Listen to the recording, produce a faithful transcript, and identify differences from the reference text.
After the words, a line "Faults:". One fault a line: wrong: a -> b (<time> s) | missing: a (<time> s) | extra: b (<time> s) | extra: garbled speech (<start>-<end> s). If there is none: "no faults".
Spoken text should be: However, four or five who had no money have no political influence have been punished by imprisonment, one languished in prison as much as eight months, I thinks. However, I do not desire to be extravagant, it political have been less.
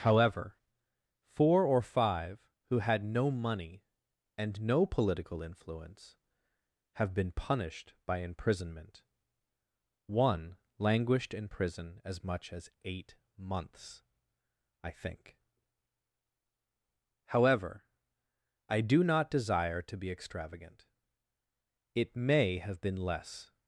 However, four or five who had no money and no political influence have been punished by imprisonment, one languished in prison as much as eight months, I think. However, I do not desire to be extravagant, it may have been less.
Faults:
wrong: have -> and (4.3 s)
wrong: thinks -> think (14.9 s)
wrong: political -> may (22.2 s)